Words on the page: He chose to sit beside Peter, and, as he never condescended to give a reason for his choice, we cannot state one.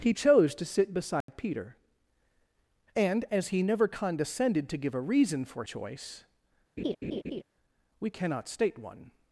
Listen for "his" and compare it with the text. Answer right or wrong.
wrong